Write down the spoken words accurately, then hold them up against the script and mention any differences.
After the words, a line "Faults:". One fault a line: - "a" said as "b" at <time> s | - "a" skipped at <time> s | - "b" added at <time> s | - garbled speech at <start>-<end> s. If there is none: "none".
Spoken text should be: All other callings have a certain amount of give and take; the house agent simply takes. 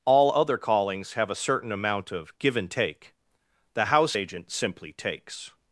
All other callings have a certain amount of give and take; the house agent simply takes.
Faults:
none